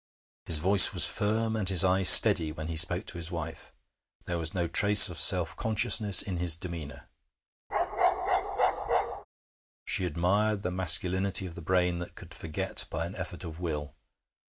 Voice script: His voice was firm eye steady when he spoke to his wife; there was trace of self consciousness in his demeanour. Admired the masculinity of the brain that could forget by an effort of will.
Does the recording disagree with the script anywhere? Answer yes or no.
yes